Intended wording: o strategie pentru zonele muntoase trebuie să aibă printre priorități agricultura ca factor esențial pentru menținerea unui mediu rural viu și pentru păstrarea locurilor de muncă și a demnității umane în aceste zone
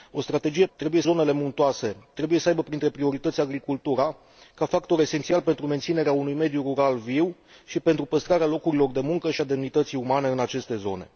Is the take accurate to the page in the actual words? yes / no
no